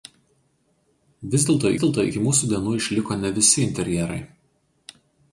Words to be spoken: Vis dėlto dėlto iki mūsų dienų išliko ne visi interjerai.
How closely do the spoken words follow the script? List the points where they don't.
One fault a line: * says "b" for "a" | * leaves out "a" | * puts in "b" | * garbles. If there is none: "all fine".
all fine